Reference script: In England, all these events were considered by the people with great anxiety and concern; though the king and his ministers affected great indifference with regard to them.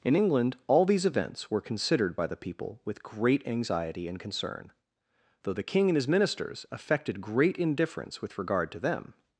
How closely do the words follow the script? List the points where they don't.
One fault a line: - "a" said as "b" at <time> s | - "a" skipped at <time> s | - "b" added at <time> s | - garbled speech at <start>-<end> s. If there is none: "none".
none